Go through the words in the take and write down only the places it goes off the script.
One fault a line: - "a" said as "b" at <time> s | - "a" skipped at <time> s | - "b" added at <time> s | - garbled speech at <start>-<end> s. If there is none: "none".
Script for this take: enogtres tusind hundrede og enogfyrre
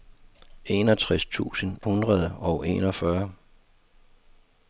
none